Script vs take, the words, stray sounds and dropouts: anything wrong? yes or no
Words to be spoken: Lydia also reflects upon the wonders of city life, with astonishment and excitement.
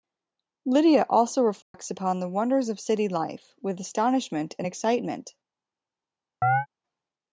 yes